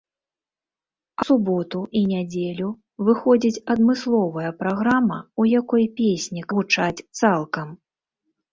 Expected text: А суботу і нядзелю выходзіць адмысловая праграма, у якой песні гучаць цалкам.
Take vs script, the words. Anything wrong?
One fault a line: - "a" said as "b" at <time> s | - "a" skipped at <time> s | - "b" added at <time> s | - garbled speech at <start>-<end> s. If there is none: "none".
none